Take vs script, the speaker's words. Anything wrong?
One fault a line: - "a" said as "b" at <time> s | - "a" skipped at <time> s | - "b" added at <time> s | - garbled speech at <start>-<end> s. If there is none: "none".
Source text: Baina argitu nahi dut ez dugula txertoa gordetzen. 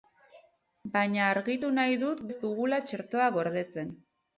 none